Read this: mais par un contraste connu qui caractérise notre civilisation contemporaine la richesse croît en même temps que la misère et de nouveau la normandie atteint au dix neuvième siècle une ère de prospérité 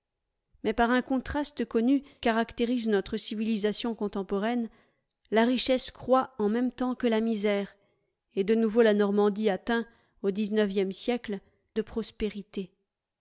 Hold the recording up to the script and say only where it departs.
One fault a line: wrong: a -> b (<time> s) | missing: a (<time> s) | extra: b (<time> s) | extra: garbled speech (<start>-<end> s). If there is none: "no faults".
missing: qui (2.0 s)
missing: une ère (11.4 s)